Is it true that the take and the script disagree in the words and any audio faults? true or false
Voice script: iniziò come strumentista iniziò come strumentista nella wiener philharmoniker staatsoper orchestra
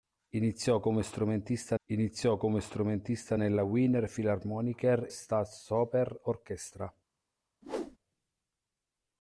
true